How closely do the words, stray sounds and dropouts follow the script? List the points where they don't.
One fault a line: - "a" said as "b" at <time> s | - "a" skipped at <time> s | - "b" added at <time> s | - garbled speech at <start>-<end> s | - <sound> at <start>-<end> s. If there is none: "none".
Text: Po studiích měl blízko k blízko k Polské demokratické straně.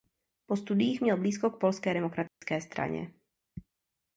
- "blízko k" skipped at 1.6 s
- dropout at 2.3-2.4 s